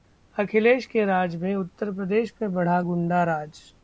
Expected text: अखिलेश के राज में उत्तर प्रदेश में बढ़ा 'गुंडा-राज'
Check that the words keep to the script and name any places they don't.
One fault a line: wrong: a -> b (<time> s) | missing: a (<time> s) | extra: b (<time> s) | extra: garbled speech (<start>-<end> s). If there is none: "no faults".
no faults